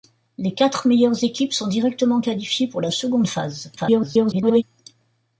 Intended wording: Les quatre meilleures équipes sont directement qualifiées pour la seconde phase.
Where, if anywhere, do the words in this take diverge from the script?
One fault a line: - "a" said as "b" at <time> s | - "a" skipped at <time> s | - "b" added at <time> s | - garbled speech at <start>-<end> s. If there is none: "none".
- garbled speech at 3.8-4.6 s